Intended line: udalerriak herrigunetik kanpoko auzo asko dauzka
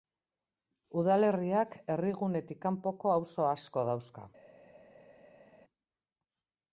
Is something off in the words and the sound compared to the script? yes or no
no